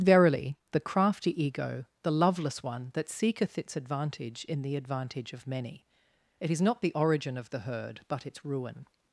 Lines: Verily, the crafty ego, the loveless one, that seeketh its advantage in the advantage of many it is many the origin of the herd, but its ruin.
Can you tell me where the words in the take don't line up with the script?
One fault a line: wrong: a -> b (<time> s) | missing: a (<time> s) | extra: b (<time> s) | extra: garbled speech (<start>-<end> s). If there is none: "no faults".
wrong: many -> not (6.6 s)